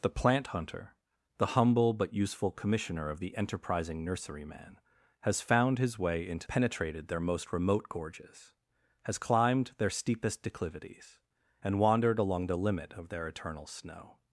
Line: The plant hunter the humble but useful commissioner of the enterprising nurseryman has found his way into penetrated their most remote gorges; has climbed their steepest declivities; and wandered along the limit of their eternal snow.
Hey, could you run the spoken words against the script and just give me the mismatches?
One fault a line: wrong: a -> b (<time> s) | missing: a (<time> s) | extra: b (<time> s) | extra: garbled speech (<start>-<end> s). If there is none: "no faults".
no faults